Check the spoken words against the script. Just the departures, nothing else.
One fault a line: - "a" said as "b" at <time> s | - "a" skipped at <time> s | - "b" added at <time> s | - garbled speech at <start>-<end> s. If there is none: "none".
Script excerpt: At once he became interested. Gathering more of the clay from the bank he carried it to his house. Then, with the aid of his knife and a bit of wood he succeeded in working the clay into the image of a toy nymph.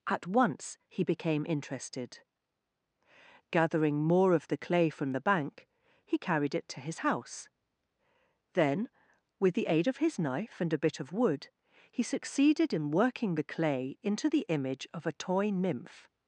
none